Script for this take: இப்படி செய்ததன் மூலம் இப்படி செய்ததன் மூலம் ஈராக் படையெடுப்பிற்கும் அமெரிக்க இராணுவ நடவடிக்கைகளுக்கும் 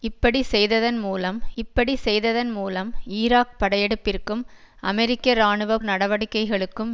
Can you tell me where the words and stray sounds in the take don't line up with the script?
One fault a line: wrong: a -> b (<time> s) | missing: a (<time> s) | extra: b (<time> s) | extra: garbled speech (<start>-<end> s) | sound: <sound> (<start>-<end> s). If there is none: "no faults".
no faults